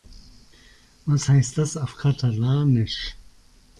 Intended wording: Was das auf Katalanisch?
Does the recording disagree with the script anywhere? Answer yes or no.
yes